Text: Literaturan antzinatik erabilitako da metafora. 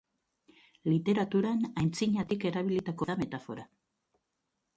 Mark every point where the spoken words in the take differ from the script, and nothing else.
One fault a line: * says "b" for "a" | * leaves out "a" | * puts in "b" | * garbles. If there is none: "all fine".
all fine